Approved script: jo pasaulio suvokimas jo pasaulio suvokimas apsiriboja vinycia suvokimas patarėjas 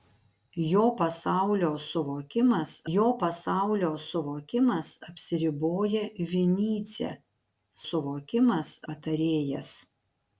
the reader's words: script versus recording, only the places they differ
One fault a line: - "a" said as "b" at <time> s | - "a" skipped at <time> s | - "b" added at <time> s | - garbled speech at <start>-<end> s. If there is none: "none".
none